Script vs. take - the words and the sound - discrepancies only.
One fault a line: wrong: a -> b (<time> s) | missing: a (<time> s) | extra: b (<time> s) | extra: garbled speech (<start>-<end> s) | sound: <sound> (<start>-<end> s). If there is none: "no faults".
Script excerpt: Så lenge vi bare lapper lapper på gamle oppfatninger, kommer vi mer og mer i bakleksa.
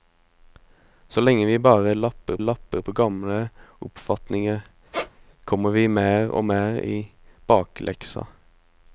sound: squeak (4.9-5.1 s)